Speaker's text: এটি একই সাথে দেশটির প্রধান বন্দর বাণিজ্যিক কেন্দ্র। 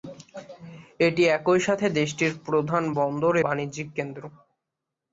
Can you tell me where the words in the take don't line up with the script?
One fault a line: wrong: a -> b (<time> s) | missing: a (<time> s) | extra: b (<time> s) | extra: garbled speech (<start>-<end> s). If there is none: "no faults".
no faults